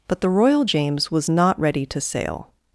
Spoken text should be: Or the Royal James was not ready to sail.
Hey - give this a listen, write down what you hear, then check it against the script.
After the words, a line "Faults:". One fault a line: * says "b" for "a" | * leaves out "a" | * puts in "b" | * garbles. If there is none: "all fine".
But the Royal James was not ready to sail.
Faults:
* says "But" for "Or"